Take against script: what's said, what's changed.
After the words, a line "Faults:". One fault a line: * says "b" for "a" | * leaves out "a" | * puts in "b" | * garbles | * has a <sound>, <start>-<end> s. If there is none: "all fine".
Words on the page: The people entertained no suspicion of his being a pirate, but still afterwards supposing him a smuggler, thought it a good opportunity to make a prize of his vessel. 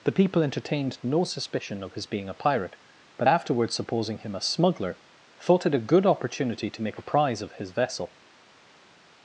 The people entertained no suspicion of his being a pirate, but afterwards supposing him a smuggler, thought it a good opportunity to make a prize of his vessel.
Faults:
* leaves out "still"